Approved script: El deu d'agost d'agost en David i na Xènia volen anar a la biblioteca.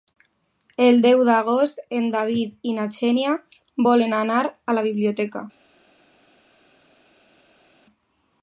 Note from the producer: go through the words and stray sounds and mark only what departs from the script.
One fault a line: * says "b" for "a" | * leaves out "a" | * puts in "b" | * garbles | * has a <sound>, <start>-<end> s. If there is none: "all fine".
* leaves out "d'agost"